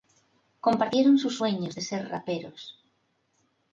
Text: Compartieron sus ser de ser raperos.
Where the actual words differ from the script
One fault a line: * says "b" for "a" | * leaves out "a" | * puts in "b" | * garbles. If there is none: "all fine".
* says "sueños" for "ser"